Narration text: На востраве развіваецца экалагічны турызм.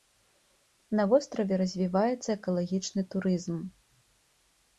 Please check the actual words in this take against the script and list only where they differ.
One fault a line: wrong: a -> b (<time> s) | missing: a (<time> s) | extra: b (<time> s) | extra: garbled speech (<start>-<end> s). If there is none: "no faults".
no faults